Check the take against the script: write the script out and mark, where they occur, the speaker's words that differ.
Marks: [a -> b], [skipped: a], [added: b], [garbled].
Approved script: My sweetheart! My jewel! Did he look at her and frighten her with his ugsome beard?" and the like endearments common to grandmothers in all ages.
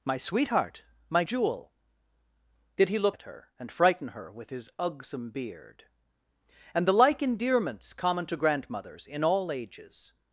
My sweetheart! My jewel! Did he look at her and frighten her with his ugsome beard?" and the like endearments common to grandmothers in all ages.